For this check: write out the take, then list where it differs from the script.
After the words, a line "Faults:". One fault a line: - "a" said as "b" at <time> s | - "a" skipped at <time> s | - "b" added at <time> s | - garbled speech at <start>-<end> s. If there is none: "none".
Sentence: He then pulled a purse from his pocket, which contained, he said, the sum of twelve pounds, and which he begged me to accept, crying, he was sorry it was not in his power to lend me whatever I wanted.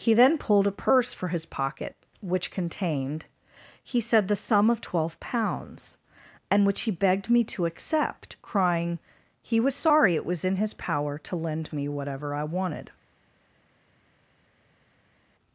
He then pulled a purse for his pocket, which contained, he said, the sum of twelve pounds, and which he begged me to accept, crying, he was sorry it was in his power to lend me whatever I wanted.
Faults:
- "from" said as "for" at 1.1 s
- "not" skipped at 10.4 s